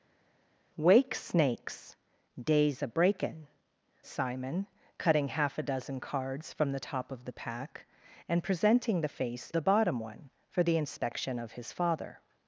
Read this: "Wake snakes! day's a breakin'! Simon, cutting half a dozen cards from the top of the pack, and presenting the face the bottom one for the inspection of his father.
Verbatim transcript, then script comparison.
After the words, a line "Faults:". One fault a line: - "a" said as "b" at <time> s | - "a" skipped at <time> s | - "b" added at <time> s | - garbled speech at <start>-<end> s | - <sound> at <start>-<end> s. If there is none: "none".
"Wake snakes! day's a breakin'! Simon, cutting half a dozen cards from the top of the pack, and presenting the face the bottom one for the inspection of his father.
Faults:
none